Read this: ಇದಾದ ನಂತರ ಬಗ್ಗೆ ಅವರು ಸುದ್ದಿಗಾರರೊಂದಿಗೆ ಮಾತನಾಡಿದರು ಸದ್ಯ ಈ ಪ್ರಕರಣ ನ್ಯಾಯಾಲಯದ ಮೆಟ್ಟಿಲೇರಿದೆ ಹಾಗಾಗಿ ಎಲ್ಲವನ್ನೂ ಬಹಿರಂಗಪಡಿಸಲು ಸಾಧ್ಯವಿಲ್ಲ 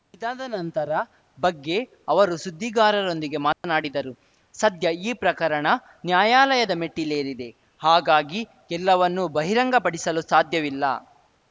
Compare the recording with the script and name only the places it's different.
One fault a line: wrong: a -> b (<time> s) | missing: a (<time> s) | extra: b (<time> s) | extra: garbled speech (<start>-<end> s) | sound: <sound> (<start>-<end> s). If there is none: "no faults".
sound: dropout (3.5-3.6 s)